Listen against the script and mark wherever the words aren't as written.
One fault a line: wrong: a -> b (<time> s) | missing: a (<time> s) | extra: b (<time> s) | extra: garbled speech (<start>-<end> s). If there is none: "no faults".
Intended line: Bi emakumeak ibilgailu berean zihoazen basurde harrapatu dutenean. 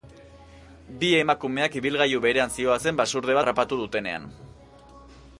no faults